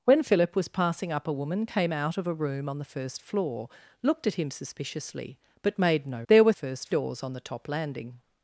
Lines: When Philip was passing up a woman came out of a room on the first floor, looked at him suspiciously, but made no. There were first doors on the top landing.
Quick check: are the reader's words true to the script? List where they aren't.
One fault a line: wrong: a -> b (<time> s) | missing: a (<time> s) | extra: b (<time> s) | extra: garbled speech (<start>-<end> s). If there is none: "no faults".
no faults